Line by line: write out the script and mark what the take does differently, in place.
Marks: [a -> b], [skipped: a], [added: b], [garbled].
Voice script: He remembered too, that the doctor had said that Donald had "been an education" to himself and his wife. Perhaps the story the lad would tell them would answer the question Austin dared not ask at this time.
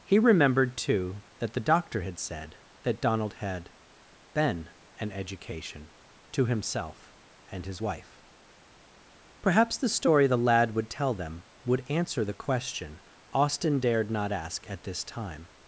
He remembered too, that the doctor had said that Donald had "been an education" to himself and his wife. Perhaps the story the lad would tell them would answer the question Austin dared not ask at this time.